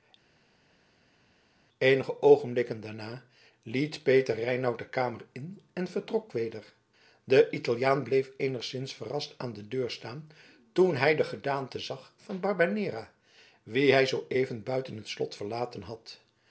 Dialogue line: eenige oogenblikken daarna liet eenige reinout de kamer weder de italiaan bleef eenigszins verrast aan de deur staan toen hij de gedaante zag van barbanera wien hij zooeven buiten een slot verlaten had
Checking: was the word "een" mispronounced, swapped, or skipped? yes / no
yes